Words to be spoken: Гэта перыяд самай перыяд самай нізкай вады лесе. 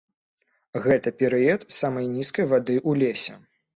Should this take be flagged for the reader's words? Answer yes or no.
yes